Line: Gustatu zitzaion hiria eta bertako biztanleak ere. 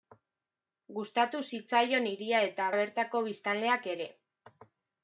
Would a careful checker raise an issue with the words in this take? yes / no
no